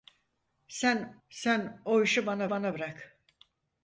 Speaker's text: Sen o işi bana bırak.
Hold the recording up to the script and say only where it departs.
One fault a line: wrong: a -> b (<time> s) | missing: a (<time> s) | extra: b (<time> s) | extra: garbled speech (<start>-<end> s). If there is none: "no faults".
extra: sen (1.3 s)
extra: bana (2.5 s)